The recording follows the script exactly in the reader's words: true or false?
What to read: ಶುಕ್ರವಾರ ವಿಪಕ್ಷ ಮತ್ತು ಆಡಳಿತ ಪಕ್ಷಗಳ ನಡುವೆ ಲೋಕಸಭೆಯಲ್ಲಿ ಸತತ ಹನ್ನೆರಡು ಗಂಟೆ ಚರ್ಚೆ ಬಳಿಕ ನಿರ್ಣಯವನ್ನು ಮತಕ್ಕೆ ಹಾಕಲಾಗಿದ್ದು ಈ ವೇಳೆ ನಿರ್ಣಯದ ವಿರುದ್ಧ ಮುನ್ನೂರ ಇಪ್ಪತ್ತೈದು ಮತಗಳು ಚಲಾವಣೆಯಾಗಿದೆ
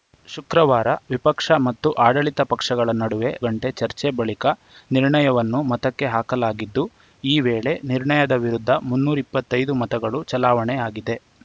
false